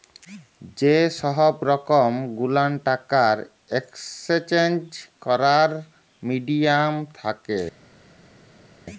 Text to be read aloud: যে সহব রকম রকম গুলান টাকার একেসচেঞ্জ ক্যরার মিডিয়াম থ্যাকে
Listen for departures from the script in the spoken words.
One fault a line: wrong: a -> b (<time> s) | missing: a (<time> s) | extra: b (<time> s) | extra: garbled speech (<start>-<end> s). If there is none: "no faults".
missing: রকম (2.1 s)